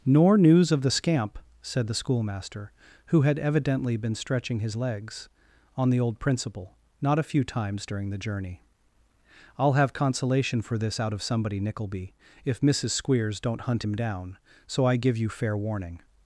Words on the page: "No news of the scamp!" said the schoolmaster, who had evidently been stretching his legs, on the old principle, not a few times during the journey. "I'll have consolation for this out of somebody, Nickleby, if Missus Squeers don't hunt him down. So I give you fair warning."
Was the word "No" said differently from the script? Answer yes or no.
yes